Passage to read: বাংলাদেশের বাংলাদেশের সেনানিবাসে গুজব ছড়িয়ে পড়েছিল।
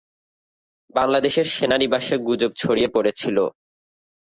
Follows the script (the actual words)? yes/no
no